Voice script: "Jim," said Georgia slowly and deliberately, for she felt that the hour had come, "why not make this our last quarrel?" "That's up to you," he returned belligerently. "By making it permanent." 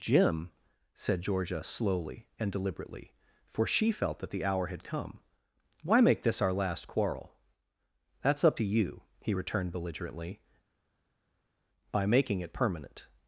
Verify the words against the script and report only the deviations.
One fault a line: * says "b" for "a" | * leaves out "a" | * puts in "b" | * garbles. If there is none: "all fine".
* leaves out "not"